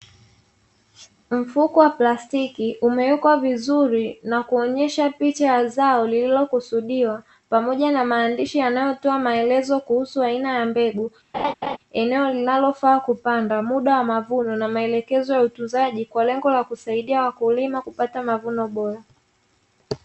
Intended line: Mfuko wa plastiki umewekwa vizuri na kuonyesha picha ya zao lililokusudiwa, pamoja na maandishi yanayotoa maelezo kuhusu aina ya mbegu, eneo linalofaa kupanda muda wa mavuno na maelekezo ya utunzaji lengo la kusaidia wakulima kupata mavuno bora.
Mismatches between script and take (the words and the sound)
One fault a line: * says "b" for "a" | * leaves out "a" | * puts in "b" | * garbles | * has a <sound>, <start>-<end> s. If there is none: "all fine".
* has a laugh, 11.3-11.8 s
* puts in "kwa"